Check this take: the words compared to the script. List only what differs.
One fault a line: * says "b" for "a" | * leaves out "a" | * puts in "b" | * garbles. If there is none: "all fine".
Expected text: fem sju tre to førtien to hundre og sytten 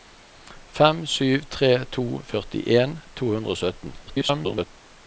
* garbles